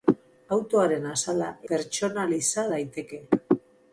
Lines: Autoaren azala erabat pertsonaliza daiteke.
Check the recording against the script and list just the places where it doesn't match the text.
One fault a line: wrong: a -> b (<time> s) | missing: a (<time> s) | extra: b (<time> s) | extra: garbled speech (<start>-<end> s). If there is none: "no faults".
missing: erabat (1.5 s)